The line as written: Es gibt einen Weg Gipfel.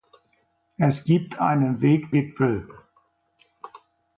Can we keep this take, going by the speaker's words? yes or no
yes